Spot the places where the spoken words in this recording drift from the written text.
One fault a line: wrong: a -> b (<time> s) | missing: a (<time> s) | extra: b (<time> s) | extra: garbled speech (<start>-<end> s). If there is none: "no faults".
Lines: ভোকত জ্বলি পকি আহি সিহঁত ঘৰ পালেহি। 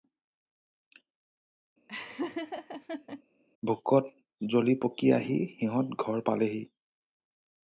no faults